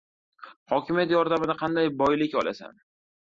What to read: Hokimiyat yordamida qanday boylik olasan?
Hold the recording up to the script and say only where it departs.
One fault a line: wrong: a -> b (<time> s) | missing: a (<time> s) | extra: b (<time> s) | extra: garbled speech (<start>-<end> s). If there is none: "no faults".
no faults